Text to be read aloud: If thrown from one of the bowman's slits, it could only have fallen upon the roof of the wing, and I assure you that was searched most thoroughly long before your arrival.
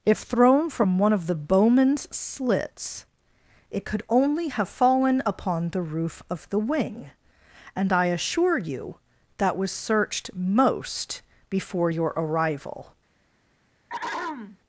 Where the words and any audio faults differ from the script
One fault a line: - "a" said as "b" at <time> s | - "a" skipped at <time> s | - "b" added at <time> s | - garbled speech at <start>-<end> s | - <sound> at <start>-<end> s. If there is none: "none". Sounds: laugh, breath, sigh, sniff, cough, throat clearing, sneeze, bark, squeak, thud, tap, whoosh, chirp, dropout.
- "thoroughly long" skipped at 11.2 s
- throat clearing at 13.9-14.6 s